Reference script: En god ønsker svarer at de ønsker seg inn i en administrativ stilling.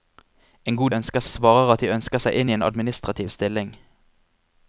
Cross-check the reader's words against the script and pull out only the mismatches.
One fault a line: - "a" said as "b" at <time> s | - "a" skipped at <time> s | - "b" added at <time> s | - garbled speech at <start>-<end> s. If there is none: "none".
none